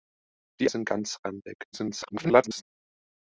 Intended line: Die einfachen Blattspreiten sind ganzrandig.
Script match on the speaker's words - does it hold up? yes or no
no